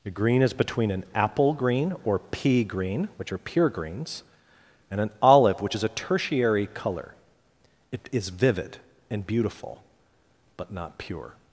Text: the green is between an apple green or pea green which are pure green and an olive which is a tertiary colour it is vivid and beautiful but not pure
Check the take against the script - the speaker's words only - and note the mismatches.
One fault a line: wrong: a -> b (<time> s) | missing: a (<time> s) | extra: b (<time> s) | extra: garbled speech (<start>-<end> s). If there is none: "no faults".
wrong: green -> greens (3.7 s)